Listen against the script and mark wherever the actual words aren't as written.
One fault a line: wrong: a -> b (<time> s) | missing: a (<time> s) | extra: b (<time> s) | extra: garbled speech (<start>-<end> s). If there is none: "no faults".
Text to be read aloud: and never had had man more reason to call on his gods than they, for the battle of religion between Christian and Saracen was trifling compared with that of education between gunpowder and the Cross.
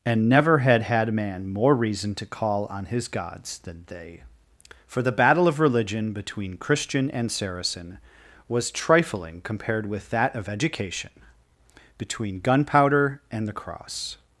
no faults